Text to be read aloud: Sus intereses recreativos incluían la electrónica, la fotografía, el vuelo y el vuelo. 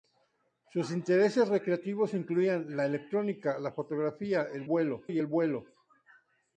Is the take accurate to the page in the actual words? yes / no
yes